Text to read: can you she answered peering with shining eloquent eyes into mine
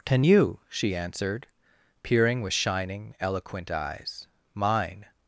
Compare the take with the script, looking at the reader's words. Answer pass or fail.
fail